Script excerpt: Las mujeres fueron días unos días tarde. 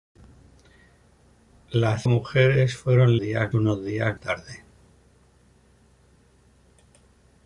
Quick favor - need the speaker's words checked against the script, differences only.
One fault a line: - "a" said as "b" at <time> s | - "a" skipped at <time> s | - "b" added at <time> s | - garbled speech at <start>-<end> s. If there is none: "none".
none